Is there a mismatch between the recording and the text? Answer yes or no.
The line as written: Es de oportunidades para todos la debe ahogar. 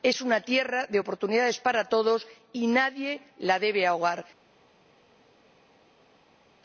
yes